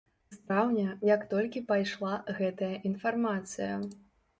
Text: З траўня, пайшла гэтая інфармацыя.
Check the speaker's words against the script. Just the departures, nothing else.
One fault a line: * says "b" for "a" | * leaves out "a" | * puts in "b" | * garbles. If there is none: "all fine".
* puts in "як толькі"